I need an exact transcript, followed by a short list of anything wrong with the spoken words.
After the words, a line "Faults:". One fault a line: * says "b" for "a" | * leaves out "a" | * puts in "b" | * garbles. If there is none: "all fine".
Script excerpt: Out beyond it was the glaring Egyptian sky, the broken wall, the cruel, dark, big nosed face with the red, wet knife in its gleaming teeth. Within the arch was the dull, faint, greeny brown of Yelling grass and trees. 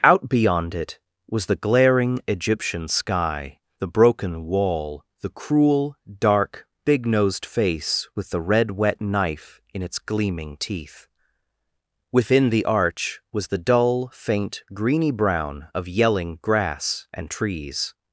Out beyond it was the glaring Egyptian sky, the broken wall, the cruel, dark, big nosed face with the red, wet knife in its gleaming teeth. Within the arch was the dull, faint, greeny brown of Yelling grass and trees.
Faults:
all fine